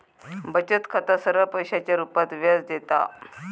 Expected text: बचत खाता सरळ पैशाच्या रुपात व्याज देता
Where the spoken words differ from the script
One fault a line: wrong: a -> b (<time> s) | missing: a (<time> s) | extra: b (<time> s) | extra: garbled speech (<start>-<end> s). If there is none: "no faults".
no faults